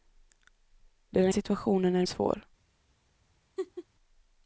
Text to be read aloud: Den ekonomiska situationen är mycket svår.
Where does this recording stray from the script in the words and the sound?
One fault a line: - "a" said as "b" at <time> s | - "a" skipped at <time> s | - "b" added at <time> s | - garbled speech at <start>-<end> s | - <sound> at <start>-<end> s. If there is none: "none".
- "ekonomiska" skipped at 1.3 s
- "mycket" skipped at 2.1 s
- laugh at 3.6-3.9 s